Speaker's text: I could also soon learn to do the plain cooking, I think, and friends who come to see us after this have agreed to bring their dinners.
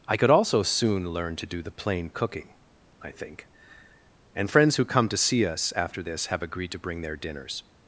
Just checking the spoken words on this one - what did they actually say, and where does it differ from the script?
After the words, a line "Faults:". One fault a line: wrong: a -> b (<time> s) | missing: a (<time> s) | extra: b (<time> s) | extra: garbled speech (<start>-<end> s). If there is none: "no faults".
I could also soon learn to do the plain cooking, I think, and friends who come to see us after this have agreed to bring their dinners.
Faults:
no faults